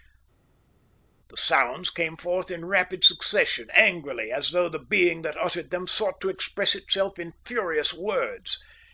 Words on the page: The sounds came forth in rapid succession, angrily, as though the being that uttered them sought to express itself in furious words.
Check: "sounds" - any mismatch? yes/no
no